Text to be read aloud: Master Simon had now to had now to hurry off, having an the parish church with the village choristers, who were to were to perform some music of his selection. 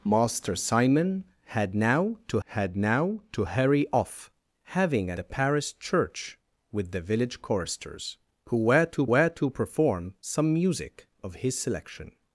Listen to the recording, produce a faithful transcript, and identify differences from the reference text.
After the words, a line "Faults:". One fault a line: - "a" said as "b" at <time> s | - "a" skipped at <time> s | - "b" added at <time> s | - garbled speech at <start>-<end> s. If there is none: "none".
Master Simon had now to had now to hurry off, having an the parish church with the village choristers, who were to were to perform some music of his selection.
Faults:
none